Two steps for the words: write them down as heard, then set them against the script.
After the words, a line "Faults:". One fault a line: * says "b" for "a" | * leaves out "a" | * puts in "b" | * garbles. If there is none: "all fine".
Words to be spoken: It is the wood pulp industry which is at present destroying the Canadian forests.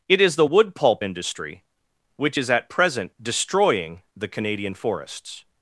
It is the wood pulp industry which is at present destroying the Canadian forests.
Faults:
all fine